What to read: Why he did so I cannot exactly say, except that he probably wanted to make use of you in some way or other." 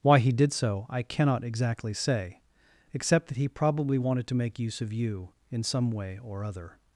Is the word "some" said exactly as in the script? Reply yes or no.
yes